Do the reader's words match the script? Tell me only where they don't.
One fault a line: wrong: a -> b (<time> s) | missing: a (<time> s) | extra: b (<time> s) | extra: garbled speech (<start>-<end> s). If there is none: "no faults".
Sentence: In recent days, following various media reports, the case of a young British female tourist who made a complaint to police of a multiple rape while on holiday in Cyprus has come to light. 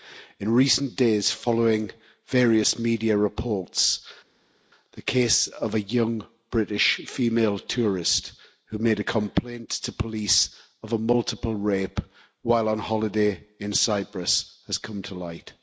no faults